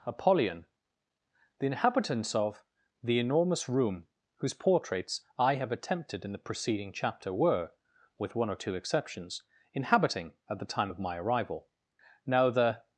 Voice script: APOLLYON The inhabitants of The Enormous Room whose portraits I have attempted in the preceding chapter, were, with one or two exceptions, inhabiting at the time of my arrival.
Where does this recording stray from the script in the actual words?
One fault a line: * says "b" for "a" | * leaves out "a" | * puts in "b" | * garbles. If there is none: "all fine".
* puts in "Now the"